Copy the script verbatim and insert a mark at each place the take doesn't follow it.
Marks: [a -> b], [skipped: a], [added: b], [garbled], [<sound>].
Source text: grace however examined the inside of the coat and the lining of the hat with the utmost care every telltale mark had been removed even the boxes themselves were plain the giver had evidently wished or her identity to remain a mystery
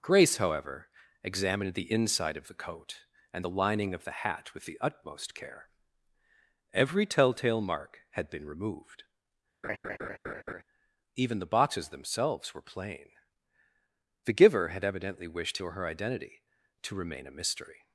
grace however examined the inside of the coat and the lining of the hat with the utmost care every telltale mark had been removed [laugh] even the boxes themselves were plain the giver had evidently wished or her identity to remain a mystery